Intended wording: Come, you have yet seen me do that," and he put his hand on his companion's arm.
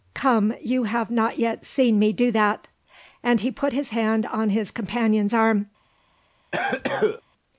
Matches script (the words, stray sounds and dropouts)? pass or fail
fail